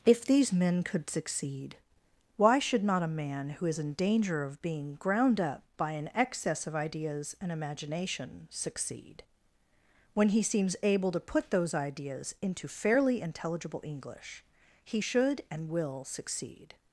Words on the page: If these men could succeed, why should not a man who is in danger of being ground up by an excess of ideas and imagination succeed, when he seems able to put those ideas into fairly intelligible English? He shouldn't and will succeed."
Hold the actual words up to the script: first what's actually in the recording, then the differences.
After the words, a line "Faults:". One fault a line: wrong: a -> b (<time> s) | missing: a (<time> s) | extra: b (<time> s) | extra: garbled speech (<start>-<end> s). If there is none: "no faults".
If these men could succeed, why should not a man who is in danger of being ground up by an excess of ideas and imagination succeed, when he seems able to put those ideas into fairly intelligible English? He should and will succeed."
Faults:
wrong: shouldn't -> should (15.0 s)